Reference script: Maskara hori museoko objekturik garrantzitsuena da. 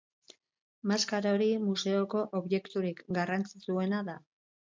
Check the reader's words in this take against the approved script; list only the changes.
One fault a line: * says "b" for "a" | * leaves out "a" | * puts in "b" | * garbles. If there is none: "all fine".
all fine